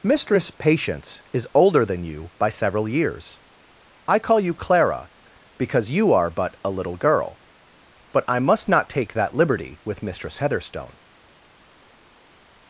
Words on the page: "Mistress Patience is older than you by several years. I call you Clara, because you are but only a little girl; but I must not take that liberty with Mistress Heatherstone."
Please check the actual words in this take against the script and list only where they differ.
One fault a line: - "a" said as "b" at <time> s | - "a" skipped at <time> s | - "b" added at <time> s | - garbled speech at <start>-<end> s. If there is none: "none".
- "only" skipped at 6.6 s